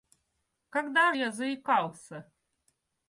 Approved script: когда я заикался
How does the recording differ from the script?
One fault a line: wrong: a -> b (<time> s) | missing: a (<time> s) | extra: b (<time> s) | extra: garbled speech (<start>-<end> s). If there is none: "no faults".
no faults